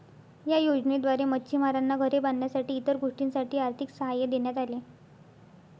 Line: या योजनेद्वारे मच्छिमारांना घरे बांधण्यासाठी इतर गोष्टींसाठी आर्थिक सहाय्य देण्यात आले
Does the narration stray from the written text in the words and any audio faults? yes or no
no